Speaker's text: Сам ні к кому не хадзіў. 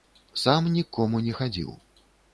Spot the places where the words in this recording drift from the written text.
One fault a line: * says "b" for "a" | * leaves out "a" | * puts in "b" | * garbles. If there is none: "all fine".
all fine